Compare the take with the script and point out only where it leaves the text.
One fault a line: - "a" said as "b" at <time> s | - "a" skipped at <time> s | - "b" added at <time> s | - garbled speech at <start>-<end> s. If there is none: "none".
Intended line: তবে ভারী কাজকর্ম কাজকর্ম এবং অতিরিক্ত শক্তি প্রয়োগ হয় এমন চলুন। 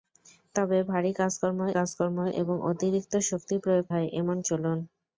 none